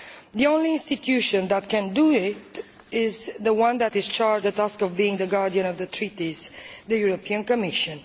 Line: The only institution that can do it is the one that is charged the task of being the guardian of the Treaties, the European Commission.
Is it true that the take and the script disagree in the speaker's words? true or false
false